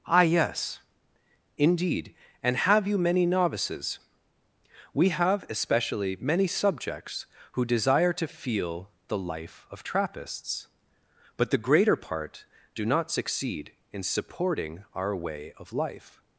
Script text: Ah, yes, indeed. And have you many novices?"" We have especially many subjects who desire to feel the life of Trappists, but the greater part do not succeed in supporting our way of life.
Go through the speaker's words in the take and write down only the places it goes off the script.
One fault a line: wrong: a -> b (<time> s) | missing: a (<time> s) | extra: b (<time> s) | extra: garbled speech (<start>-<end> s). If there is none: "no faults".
no faults